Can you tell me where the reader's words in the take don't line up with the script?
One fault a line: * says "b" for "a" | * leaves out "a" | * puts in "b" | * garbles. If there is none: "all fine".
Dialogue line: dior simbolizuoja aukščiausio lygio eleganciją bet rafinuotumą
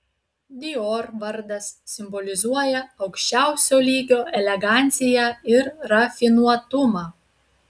* puts in "vardas"
* says "ir" for "bet"